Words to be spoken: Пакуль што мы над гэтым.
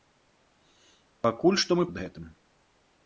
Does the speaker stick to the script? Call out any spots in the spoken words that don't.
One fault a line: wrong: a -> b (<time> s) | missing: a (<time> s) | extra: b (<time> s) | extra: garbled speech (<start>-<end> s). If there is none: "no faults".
no faults